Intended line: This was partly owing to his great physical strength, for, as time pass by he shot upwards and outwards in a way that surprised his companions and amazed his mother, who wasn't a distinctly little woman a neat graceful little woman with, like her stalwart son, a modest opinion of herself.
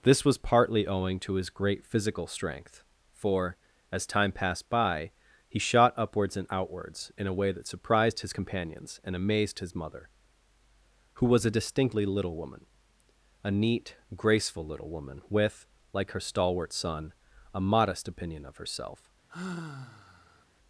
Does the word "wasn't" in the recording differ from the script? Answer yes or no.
yes